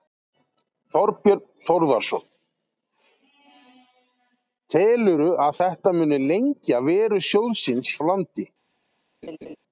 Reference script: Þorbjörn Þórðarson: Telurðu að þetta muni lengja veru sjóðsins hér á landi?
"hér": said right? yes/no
no